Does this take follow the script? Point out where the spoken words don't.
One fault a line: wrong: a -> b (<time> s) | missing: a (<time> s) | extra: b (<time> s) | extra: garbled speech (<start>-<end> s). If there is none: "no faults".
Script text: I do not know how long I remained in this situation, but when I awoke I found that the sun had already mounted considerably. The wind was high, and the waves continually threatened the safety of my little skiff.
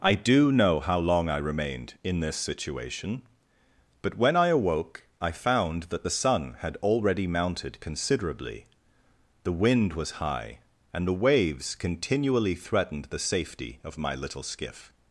missing: not (0.5 s)